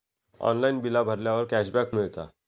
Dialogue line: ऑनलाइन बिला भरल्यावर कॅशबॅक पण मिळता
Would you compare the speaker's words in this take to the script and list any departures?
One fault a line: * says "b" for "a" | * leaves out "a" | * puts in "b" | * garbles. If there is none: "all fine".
* leaves out "पण"